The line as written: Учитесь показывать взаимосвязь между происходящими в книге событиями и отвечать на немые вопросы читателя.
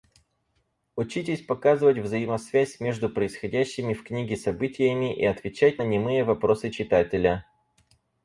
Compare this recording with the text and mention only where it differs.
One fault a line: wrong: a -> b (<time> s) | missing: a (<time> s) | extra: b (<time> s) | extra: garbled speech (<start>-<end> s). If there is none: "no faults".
no faults